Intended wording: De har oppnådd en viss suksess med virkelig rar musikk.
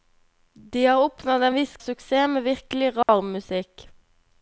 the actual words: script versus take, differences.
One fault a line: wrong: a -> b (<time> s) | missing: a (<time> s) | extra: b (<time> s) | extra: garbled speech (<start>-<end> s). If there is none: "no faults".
no faults